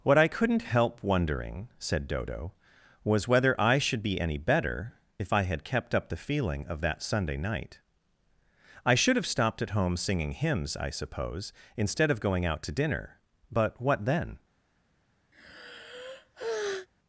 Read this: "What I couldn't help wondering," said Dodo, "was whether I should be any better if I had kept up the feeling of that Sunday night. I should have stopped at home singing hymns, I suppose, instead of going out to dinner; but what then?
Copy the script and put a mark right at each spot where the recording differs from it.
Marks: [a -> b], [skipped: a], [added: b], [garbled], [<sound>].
"What I couldn't help wondering," said Dodo, "was whether I should be any better if I had kept up the feeling of that Sunday night. I should have stopped at home singing hymns, I suppose, instead of going out to dinner; but what then? [sigh]